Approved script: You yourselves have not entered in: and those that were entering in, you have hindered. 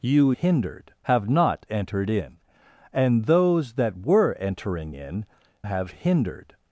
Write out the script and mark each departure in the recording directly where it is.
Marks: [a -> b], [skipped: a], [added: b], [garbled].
You [yourselves -> hindered] have not entered in: and those that were entering in, [skipped: you] have hindered.